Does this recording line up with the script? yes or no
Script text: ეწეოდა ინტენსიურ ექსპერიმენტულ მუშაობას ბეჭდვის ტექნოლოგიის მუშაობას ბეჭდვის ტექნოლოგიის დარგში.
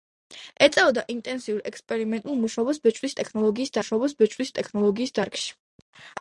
yes